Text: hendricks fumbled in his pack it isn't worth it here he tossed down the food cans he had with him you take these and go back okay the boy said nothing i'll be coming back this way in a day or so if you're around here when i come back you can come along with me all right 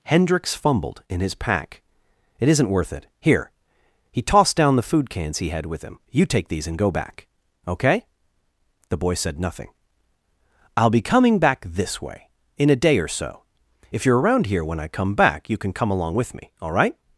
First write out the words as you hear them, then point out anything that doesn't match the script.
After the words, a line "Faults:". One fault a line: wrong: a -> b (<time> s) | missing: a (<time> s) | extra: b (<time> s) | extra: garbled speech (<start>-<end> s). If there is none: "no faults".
hendricks fumbled in his pack it isn't worth it here he tossed down the food cans he had with him you take these and go back okay the boy said nothing i'll be coming back this way in a day or so if you're around here when i come back you can come along with me all right
Faults:
no faults